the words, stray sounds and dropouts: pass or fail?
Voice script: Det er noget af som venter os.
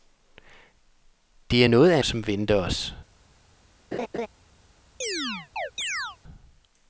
fail